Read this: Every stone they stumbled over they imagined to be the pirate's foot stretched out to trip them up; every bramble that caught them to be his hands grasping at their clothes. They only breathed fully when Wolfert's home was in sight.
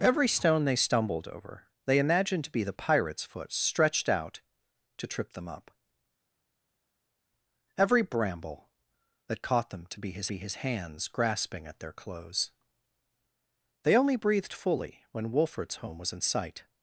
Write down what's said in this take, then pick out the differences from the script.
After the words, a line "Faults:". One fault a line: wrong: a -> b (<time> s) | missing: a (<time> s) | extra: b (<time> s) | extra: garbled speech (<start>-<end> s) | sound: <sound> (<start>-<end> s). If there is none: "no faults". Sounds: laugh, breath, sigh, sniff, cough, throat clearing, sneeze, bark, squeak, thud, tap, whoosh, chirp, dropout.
Every stone they stumbled over they imagined to be the pirate's foot stretched out to trip them up; every bramble that caught them to be his be his hands grasping at their clothes. They only breathed fully when Wolfert's home was in sight.
Faults:
extra: be his (10.3 s)